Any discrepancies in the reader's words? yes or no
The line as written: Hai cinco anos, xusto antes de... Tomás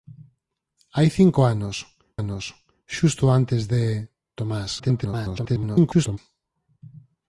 yes